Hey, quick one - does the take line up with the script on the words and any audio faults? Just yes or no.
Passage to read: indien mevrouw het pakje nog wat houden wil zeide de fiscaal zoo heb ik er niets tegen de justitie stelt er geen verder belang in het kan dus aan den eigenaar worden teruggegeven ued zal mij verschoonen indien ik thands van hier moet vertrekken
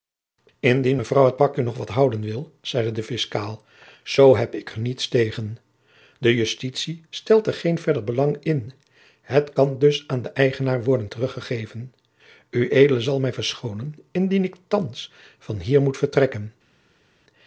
yes